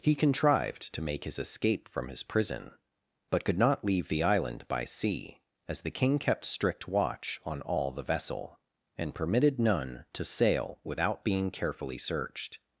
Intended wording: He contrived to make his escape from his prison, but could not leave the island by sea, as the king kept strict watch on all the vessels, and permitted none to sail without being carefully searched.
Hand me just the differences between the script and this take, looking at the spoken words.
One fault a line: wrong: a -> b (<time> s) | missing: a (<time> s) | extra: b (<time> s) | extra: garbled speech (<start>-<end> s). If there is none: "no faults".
wrong: vessels -> vessel (8.0 s)